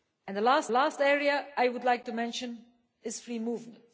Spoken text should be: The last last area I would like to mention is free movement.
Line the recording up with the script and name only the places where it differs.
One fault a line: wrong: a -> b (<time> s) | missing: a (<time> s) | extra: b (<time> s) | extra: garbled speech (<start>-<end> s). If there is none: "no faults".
no faults